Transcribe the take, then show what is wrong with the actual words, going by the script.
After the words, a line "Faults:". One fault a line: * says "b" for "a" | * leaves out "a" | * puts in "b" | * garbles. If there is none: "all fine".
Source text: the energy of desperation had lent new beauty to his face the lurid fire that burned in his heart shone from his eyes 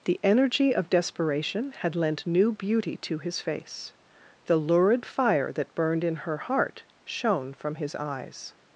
the energy of desperation had lent new beauty to his face the lurid fire that burned in her heart shone from his eyes
Faults:
* says "her" for "his"